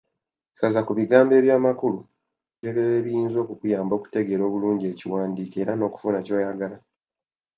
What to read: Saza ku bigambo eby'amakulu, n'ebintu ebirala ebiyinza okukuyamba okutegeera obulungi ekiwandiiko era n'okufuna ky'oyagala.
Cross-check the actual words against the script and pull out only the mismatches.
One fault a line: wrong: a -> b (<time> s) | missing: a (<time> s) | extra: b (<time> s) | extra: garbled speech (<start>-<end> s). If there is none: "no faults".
missing: n'ebintu (2.0 s)